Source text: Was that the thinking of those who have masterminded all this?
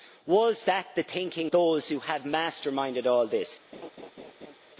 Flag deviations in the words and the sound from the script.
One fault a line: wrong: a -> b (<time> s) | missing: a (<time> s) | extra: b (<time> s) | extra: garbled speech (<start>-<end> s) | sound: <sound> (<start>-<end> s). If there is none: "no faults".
missing: of (1.5 s)
sound: laugh (3.7-4.6 s)